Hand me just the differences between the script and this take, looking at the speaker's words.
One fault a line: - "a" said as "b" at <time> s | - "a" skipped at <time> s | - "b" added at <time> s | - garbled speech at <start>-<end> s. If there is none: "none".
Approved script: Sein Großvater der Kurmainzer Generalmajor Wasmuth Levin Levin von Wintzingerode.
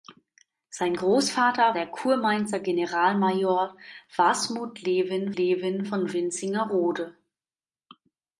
none